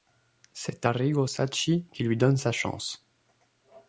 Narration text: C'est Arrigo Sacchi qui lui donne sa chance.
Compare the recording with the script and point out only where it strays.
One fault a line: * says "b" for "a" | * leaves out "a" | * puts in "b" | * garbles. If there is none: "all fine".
all fine